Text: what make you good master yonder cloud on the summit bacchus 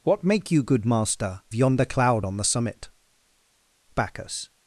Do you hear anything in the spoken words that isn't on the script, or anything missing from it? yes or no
no